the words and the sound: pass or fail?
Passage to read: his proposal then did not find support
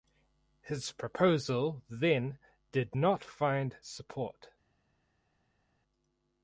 pass